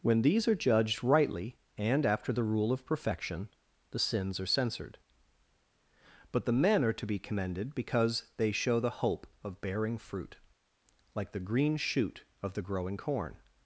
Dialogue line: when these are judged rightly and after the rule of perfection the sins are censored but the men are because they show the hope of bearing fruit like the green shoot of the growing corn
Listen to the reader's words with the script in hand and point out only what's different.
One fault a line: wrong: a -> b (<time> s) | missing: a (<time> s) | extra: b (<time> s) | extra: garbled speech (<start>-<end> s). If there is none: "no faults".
extra: to be commended (6.9 s)